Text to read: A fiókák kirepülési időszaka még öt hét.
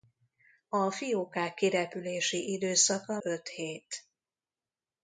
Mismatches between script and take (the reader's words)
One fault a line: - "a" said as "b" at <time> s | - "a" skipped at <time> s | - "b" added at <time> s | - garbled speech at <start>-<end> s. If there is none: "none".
- "még" skipped at 3.2 s